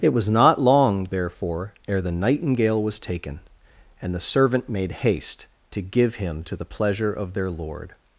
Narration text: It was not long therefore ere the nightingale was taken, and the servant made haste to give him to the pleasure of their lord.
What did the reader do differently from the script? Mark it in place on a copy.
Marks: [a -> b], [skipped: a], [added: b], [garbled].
It was not long therefore ere the nightingale was taken, and the servant made haste to give him to the pleasure of their lord.